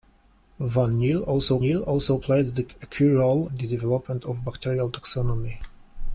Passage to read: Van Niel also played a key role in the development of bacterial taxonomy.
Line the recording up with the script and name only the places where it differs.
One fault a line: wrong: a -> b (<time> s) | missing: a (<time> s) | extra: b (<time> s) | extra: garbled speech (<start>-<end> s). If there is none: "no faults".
extra: Niel also (1.6 s)
missing: in (3.5 s)